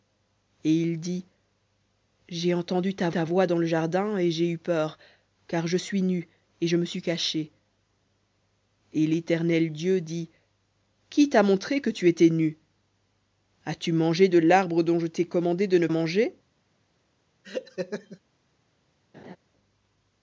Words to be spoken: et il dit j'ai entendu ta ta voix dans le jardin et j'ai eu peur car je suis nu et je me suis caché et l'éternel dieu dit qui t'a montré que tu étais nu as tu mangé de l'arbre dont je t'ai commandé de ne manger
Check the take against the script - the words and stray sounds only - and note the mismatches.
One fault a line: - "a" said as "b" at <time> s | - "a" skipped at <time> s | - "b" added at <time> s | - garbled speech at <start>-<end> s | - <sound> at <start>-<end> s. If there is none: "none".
- laugh at 17.4-18.2 s
- laugh at 19.1-19.4 s